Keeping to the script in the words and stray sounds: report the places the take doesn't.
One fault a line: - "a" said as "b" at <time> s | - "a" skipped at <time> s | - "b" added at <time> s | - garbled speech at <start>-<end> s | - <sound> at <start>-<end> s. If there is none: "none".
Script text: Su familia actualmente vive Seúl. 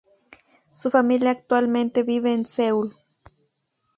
- "en" added at 2.3 s